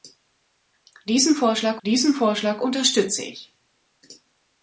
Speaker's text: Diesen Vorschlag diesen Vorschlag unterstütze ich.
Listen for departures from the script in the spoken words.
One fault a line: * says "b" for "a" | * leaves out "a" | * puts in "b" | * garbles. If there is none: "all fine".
all fine